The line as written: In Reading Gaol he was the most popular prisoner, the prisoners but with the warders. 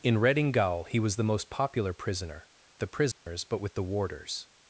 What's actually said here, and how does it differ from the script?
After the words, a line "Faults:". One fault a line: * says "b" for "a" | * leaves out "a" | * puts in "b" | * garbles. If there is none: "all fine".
In Reading Gaol he was the most popular prisoner, the prisoners but with the warders.
Faults:
all fine